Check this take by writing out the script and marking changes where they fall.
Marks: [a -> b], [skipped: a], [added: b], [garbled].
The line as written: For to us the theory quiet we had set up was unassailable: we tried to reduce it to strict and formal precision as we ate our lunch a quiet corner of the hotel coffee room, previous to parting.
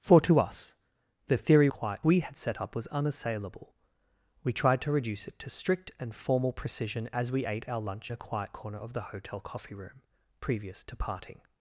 For to us the theory quiet we had set up was unassailable: we tried to reduce it to strict and formal precision as we ate our lunch a quiet corner of the hotel coffee room, previous to parting.